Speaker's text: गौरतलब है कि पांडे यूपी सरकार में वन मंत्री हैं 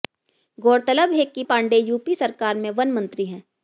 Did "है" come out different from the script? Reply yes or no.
no